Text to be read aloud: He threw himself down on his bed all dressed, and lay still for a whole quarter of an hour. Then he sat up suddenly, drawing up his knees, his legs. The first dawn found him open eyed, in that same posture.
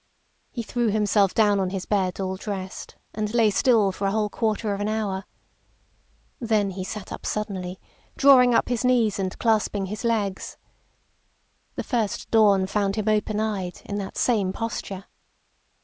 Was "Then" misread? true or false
false